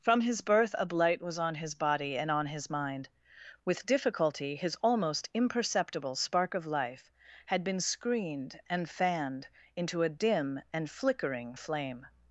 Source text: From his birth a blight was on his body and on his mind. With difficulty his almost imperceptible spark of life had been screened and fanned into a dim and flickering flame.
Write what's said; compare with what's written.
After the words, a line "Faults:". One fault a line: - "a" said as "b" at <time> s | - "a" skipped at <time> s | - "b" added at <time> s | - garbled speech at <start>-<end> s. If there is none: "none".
From his birth a blight was on his body and on his mind. With difficulty his almost imperceptible spark of life had been screened and fanned into a dim and flickering flame.
Faults:
none